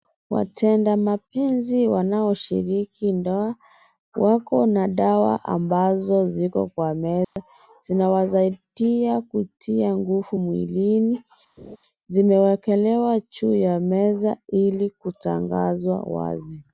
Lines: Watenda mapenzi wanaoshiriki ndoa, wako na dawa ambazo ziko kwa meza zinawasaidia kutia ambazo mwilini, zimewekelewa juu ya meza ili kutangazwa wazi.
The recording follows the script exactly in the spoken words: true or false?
false